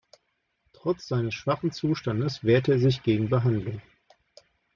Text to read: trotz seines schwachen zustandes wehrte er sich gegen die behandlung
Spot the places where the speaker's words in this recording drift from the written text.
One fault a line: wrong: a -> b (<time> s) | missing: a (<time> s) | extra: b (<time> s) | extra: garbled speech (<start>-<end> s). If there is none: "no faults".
missing: die (3.3 s)